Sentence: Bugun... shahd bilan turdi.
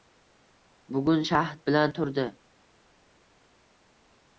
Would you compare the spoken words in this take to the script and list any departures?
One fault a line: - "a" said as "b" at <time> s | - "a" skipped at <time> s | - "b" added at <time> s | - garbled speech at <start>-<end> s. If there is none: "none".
none